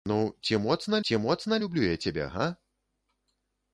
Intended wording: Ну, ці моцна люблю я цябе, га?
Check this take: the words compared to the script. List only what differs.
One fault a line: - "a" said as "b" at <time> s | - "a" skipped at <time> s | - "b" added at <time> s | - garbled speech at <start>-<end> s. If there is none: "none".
- "ці моцна" added at 1.0 s